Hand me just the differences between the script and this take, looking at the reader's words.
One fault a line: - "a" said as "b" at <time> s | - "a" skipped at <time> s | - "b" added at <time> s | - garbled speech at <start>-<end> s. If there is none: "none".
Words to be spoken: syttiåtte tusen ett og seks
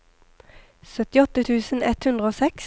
- "hundre" added at 2.1 s